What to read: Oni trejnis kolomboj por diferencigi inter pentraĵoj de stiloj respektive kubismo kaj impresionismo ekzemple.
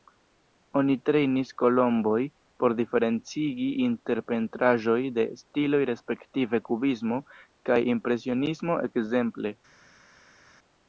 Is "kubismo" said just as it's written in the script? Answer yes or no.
yes